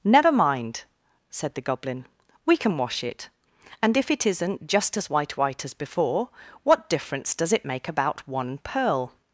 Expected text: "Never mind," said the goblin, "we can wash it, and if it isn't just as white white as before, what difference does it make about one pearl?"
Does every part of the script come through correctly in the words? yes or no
yes